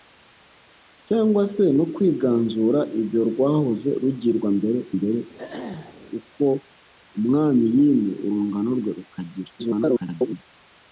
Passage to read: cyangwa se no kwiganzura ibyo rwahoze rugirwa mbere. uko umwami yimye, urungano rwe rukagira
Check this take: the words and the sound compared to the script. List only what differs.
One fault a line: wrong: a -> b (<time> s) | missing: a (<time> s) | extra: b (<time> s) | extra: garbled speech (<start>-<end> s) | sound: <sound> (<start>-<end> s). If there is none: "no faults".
extra: mbere (5.0 s)
sound: throat clearing (5.4-6.0 s)
extra: garbled speech (9.6-10.4 s)